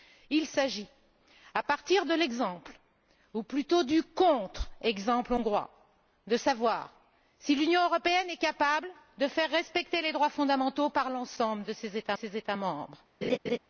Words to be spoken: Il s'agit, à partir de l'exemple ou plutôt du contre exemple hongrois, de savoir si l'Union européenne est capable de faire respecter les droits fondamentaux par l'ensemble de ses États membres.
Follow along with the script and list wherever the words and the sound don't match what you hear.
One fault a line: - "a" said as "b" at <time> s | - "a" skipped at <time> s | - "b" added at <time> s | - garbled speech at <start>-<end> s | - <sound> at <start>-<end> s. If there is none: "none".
- "ses États" added at 12.1 s
- laugh at 13.2-13.6 s